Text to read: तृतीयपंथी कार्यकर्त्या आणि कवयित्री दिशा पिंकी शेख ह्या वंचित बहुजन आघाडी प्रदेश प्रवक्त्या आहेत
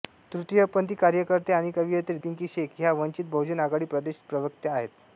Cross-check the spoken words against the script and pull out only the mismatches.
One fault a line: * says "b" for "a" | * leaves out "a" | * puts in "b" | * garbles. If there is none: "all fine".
* leaves out "दिशा"